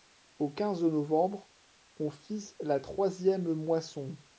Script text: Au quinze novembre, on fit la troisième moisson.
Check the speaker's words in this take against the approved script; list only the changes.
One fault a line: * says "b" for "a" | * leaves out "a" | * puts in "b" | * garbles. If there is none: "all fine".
all fine